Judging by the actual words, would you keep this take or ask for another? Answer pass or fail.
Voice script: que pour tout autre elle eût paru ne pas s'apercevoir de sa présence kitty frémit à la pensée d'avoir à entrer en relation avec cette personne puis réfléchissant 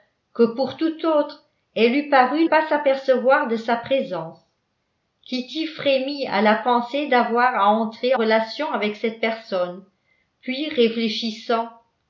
fail